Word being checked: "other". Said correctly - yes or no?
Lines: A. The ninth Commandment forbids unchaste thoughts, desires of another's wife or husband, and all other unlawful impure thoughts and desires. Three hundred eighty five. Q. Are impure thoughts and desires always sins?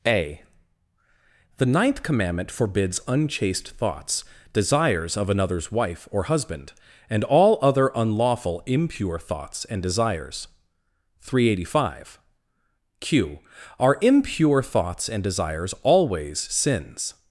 yes